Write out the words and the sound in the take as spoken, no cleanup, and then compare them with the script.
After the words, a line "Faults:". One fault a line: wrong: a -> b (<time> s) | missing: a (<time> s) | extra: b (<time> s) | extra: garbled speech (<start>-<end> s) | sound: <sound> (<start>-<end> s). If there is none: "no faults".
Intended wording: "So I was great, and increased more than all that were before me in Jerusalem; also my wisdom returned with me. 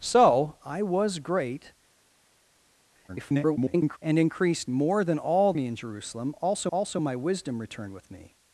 "So I was great, [garbled] and increased more than all me in Jerusalem; also also my wisdom returned with me.
Faults:
extra: garbled speech (3.1-4.0 s)
missing: that were before (5.5 s)
extra: also (6.7 s)